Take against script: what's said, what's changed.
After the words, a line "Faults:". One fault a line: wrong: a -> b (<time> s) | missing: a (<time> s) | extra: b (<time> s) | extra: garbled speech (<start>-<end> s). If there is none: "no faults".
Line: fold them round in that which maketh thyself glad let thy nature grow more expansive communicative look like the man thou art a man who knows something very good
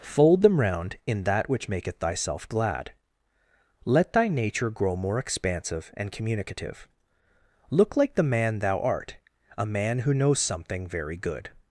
fold them round in that which maketh thyself glad let thy nature grow more expansive and communicative look like the man thou art a man who knows something very good
Faults:
extra: and (6.0 s)